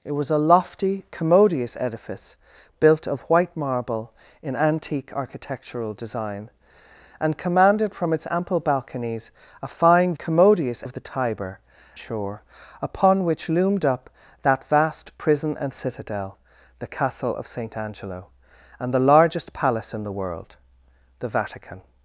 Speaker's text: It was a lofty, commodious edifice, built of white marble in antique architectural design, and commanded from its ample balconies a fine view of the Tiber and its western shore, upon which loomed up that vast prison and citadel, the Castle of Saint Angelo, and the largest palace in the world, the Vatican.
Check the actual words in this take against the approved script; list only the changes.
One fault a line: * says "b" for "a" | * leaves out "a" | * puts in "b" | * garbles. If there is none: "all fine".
* says "commodious" for "view"
* leaves out "and its western"